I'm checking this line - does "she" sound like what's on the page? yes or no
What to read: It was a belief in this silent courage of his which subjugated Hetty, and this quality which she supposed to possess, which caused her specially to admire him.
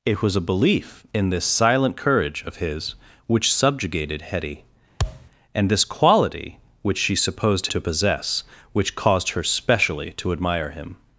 yes